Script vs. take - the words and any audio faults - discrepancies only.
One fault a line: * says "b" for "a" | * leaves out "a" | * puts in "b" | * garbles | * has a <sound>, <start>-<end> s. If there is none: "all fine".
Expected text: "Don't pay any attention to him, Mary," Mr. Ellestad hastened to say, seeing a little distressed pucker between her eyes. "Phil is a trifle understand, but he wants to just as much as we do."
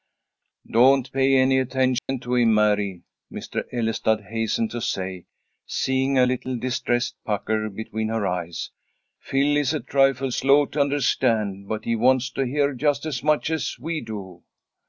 * has a dropout, 2.0-2.1 s
* puts in "slow to"
* puts in "hear"